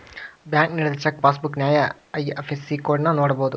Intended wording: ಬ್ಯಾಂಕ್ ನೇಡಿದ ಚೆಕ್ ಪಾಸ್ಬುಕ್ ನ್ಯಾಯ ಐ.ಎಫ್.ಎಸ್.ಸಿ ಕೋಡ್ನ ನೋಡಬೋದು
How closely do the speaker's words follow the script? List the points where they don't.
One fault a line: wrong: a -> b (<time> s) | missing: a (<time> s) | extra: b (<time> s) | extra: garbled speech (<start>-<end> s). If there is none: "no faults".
no faults